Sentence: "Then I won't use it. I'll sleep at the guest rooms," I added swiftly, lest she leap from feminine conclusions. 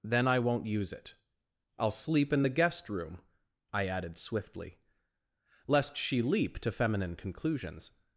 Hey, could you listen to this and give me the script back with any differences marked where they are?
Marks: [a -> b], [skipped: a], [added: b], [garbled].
"Then I won't use it. I'll sleep [at -> in] the guest [rooms," -> room] I added swiftly, lest she leap [from -> to] feminine conclusions.